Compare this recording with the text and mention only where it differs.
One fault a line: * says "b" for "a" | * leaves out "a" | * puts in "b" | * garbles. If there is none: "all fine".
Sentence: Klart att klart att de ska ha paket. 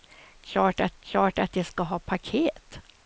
all fine